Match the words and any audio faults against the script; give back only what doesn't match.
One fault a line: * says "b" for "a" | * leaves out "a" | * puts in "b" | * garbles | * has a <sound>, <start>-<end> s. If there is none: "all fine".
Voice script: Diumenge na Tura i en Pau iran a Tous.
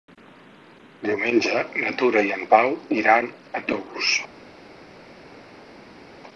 all fine